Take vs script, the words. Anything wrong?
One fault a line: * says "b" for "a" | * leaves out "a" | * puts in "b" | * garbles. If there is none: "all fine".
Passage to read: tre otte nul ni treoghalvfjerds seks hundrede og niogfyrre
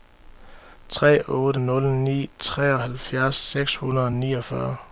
all fine